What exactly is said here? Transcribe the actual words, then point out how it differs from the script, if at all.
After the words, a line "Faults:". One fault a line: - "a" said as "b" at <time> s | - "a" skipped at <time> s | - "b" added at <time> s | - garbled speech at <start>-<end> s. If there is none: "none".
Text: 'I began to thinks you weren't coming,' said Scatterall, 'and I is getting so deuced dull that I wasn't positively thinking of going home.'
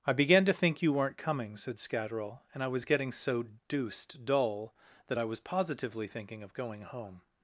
'I began to think you weren't coming,' said Scatterall, 'and I was getting so deuced dull that I was positively thinking of going home.'
Faults:
- "thinks" said as "think" at 0.5 s
- "is" said as "was" at 2.7 s
- "wasn't" said as "was" at 5.3 s